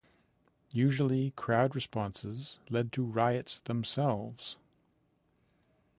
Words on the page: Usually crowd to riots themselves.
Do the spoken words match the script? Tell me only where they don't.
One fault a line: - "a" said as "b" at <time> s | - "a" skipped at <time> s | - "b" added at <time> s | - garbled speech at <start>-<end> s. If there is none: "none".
- "responses led" added at 1.8 s